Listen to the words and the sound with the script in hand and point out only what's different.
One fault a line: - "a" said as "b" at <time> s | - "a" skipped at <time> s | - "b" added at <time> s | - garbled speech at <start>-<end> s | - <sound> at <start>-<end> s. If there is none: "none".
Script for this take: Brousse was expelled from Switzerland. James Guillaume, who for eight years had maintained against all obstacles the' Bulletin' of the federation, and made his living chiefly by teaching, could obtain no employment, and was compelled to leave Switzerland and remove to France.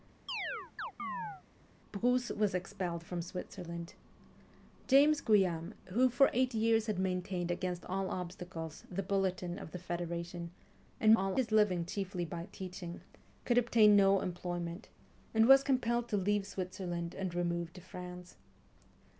- chirp at 0.3-1.4 s
- "made" said as "all" at 11.1 s